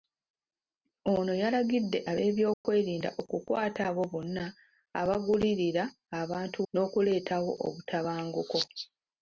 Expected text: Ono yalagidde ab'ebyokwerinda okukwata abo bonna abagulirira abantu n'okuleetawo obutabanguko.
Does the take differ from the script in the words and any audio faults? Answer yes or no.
yes